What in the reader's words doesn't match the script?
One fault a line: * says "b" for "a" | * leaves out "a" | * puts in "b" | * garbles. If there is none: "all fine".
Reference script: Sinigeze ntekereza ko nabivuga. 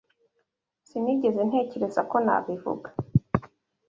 all fine